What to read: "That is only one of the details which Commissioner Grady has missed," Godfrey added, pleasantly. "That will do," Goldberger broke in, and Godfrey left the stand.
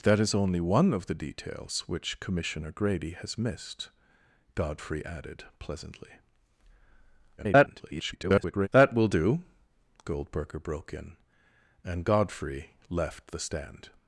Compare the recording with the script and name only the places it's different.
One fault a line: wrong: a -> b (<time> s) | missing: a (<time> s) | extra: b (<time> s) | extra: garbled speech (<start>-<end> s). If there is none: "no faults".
extra: garbled speech (7.4-8.7 s)